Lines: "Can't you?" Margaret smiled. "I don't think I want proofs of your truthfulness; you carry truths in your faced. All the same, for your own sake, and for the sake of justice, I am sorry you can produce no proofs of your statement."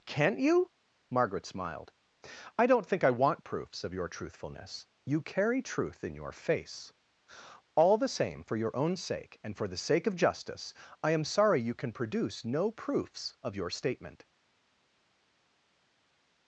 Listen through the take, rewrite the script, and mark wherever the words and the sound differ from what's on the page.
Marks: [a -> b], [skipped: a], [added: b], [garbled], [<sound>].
"Can't you?" Margaret smiled. "I don't think I want proofs of your truthfulness; you carry [truths -> truth] in your [faced. -> face] All the same, for your own sake, and for the sake of justice, I am sorry you can produce no proofs of your statement."